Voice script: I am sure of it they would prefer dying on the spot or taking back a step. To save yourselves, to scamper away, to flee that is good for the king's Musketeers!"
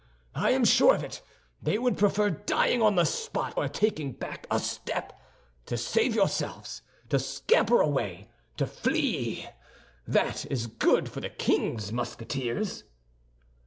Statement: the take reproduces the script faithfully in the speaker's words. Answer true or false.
true